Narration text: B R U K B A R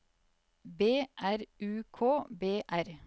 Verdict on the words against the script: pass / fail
fail